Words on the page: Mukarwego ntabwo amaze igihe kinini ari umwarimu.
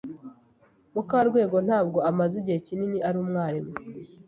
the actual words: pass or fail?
pass